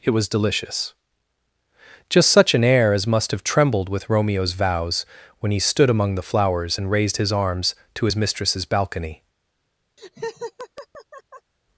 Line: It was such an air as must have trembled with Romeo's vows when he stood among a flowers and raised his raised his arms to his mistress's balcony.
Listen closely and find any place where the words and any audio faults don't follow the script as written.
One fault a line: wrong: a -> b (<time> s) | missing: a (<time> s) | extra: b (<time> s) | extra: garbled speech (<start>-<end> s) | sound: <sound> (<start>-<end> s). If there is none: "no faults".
extra: delicious just (0.3 s)
wrong: a -> the (6.2 s)
missing: raised his (7.3 s)
sound: laugh (10.0-11.5 s)